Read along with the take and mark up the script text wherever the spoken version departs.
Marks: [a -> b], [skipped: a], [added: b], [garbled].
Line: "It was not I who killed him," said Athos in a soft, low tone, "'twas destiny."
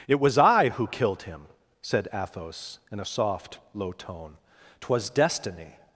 "It was [skipped: not] I who killed him," said Athos in a soft, low tone, "'twas destiny."